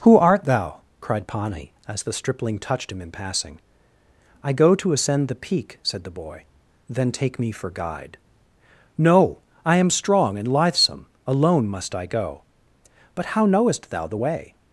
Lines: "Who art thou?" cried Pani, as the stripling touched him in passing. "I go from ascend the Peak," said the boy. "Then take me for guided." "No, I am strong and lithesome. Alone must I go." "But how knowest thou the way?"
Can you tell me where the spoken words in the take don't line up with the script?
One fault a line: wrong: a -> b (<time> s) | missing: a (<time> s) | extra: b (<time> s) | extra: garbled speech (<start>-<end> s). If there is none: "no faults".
wrong: from -> to (4.7 s)
wrong: guided -> guide (7.7 s)